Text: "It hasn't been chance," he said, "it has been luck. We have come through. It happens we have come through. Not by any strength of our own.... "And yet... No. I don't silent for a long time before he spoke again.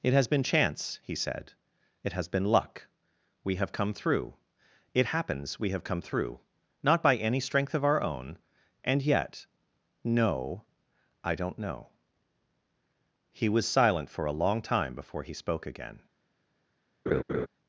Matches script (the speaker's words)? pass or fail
fail